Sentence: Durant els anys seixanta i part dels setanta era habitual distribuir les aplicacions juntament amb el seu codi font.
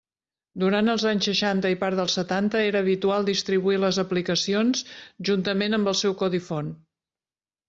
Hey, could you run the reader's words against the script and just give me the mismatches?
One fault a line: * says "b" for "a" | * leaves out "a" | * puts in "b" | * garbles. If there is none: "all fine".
all fine